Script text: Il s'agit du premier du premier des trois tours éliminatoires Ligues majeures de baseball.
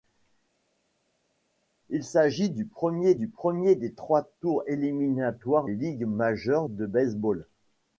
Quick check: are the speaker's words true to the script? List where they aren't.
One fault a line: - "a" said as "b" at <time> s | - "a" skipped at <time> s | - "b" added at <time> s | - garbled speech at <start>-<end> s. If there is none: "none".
none